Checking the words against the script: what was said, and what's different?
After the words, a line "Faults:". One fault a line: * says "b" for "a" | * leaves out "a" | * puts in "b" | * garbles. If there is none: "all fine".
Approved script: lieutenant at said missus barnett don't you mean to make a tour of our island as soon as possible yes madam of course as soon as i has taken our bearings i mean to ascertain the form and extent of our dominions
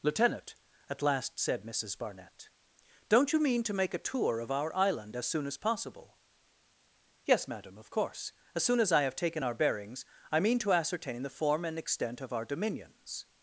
lieutenant at last said missus barnett don't you mean to make a tour of our island as soon as possible yes madam of course as soon as i have taken our bearings i mean to ascertain the form and extent of our dominions
Faults:
* puts in "last"
* says "have" for "has"